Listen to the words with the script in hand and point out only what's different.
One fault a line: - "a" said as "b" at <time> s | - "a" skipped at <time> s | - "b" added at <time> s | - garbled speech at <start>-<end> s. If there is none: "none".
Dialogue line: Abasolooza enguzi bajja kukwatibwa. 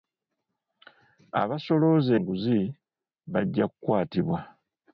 none